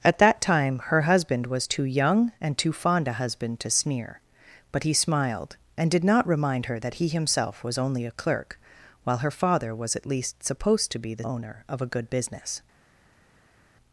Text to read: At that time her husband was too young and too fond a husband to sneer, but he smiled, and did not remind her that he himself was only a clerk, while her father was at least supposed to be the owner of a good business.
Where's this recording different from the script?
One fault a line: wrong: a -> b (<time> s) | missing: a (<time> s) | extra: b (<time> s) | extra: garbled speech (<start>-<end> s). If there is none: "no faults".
no faults